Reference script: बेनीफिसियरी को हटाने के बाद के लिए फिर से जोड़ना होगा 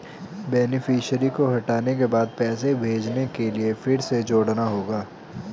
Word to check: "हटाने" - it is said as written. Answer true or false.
true